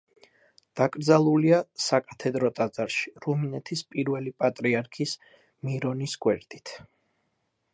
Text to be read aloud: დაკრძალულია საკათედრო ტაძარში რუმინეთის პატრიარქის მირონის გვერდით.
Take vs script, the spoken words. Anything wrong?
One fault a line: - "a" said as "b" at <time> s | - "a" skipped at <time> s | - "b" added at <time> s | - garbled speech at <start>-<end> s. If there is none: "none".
- "პირველი" added at 3.9 s